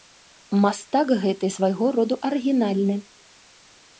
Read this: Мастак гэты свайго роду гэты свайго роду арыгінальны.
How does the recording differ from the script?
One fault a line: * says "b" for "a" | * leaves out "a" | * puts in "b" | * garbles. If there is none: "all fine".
* leaves out "гэты свайго роду"